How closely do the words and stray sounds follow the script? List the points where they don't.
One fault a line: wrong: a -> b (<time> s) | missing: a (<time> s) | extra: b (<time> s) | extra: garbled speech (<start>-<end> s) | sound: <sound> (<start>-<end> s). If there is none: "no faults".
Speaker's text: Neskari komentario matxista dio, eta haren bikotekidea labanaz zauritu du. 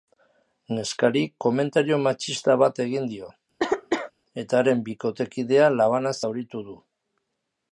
extra: bat egin (2.6 s)
sound: cough (3.6-4.1 s)